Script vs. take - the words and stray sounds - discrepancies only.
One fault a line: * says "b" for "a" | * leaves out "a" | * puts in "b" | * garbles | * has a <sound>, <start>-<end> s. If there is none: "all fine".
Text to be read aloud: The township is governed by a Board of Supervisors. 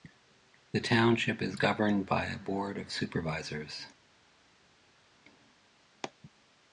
all fine